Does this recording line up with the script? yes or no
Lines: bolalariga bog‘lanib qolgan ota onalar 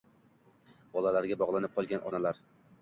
no